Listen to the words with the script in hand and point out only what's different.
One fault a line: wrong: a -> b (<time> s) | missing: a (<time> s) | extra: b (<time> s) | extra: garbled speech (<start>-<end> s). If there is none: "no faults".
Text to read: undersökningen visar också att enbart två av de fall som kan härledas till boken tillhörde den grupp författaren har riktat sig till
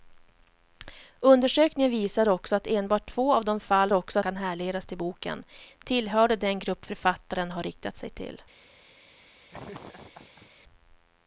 wrong: som -> också (3.9 s)